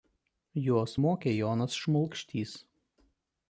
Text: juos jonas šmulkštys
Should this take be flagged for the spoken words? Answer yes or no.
yes